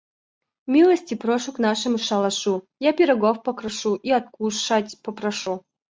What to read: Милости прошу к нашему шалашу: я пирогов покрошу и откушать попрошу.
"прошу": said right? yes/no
yes